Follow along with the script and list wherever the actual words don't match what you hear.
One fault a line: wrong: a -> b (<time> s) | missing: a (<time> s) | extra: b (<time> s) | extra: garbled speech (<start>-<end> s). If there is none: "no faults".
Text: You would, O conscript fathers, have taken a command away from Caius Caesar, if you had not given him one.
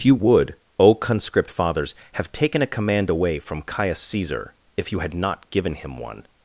no faults